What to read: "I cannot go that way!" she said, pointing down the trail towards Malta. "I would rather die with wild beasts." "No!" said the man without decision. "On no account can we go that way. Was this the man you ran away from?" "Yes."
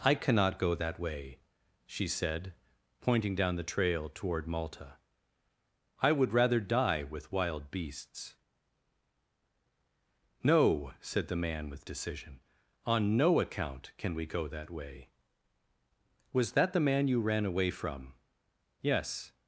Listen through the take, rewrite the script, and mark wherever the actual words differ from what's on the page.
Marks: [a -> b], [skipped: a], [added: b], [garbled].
"I cannot go that way!" she said, pointing down the trail [towards -> toward] Malta. "I would rather die with wild beasts." "No!" said the man [without -> with] decision. "On no account can we go that way. Was [this -> that] the man you ran away from?" "Yes."